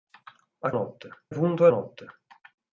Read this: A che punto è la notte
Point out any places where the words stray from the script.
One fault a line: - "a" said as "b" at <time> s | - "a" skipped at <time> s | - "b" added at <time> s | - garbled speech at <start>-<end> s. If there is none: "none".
- "che" said as "notte" at 0.7 s
- "la" skipped at 1.7 s